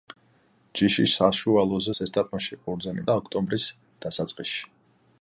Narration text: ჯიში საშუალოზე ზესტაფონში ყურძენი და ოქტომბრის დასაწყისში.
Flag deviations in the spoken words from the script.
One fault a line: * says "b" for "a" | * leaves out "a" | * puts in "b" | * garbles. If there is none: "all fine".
all fine